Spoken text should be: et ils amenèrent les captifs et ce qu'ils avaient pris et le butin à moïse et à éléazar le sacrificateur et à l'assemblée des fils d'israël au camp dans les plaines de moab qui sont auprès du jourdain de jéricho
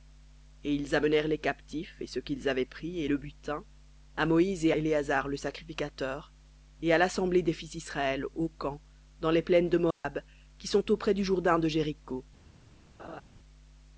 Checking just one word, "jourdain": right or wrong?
right